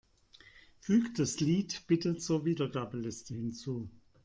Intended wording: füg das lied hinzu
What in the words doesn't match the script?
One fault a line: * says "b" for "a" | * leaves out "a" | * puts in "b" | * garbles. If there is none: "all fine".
* puts in "bitte zur wiedergabeliste"